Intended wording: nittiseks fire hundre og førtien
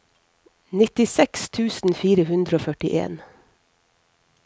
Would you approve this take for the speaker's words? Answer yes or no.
no